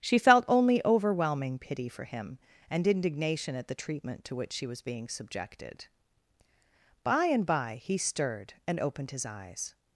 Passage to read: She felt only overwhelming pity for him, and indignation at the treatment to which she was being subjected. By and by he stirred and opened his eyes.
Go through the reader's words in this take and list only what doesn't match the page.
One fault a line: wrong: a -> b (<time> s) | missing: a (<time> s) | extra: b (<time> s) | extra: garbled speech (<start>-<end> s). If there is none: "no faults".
no faults